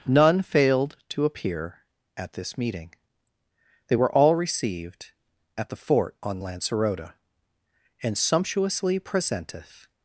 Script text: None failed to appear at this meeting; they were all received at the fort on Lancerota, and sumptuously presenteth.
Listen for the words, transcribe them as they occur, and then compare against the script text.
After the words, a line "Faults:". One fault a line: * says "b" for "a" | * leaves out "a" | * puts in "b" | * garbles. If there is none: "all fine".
None failed to appear at this meeting; they were all received at the fort on Lancerota, and sumptuously presenteth.
Faults:
all fine